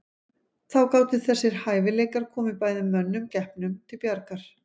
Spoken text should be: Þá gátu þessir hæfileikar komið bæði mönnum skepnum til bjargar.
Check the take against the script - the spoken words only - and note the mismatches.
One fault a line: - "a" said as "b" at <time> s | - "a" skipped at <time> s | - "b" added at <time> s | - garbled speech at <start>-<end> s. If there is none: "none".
none